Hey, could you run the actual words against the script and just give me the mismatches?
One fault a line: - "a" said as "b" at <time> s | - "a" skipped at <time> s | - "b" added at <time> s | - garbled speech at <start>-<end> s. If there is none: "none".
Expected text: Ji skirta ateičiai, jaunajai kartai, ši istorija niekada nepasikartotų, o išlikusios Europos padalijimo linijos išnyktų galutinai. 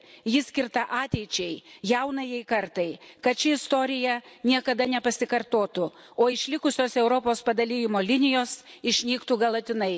- "kad" added at 3.2 s